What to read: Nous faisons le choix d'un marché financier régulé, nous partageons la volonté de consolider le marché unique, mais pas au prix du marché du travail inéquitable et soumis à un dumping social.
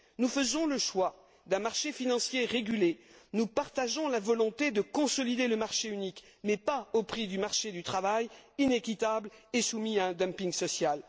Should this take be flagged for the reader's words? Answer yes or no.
no